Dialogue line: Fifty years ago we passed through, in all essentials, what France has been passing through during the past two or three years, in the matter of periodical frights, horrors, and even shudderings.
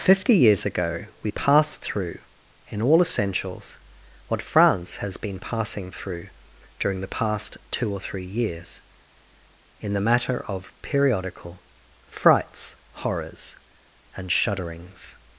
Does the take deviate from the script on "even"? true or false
true